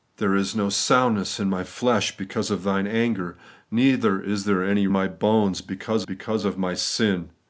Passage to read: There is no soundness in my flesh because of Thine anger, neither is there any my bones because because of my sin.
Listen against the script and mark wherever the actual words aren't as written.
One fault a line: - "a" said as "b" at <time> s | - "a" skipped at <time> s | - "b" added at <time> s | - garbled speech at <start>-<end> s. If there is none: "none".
none